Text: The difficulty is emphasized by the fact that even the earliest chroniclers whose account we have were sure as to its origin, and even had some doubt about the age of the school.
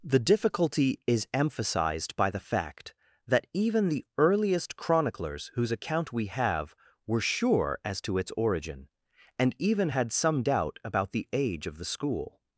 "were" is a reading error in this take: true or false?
false